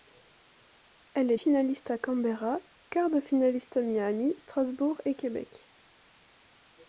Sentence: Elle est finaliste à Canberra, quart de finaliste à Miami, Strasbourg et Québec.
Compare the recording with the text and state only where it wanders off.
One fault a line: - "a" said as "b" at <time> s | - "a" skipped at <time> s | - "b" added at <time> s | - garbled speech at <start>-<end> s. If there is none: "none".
none